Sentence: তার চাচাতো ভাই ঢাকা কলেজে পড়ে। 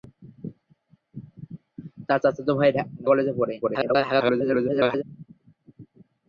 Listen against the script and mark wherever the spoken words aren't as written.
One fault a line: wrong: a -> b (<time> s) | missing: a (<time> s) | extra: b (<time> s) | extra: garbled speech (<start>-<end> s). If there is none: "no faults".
missing: ঢাকা (2.7 s)
extra: garbled speech (3.6-5.0 s)